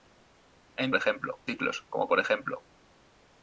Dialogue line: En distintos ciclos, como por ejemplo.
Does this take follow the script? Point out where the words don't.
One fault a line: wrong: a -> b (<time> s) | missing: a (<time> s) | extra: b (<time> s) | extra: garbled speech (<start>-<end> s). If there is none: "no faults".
wrong: distintos -> ejemplo (0.9 s)